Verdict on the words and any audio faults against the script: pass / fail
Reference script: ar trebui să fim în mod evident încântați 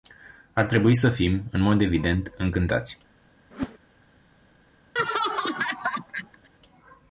fail